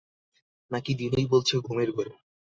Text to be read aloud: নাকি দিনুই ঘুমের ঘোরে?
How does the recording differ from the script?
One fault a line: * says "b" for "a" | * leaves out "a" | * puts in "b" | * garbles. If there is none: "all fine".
* puts in "বলছে"